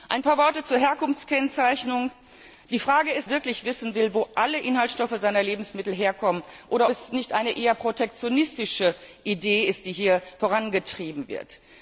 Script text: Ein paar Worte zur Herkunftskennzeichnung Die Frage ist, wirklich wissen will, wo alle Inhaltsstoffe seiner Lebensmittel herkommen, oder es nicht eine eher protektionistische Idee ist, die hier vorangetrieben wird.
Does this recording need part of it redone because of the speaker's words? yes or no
no